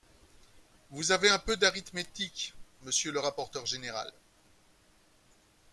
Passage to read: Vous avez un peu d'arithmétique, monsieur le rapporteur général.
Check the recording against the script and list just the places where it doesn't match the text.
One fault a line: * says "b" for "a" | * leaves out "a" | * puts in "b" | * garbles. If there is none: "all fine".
all fine